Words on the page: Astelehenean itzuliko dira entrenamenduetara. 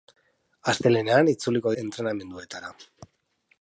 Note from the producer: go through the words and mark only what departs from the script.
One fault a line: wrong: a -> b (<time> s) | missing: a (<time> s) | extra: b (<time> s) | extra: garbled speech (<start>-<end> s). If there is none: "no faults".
missing: dira (1.8 s)